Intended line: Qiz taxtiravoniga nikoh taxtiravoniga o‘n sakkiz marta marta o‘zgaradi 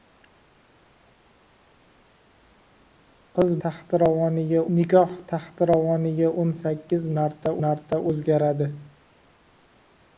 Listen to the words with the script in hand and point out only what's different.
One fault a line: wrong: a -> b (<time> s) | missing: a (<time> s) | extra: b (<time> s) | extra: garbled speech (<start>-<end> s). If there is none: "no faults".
no faults